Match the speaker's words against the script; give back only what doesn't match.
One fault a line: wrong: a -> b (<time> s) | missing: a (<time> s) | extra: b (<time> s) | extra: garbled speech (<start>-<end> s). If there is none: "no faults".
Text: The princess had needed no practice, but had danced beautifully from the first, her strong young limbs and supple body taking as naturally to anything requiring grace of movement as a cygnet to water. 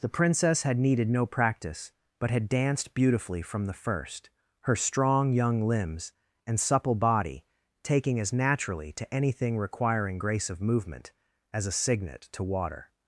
no faults